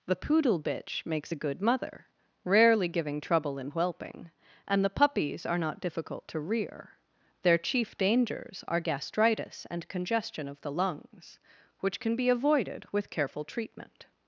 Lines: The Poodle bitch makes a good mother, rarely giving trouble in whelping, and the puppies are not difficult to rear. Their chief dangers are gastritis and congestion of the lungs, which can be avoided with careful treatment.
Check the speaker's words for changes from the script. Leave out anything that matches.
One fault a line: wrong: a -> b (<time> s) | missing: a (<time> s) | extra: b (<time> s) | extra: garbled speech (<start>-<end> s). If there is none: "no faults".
no faults